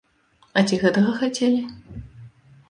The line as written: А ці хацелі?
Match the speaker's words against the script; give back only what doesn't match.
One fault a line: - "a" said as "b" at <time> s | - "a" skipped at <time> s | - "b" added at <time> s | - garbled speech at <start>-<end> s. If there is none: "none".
- "гэтага" added at 0.8 s